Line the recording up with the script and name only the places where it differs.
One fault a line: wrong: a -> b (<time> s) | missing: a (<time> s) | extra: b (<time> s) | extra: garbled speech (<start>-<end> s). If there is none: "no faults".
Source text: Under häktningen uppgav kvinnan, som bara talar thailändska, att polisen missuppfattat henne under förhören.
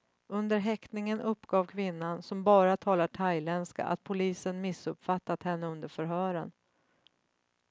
no faults